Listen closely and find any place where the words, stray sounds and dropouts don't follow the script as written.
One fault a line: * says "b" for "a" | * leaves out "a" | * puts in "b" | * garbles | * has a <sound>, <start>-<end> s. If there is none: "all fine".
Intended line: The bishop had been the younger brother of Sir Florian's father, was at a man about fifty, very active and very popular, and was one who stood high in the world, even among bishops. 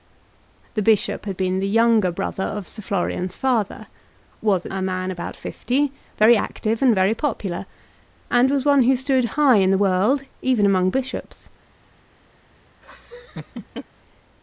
* has a laugh, 12.8-13.8 s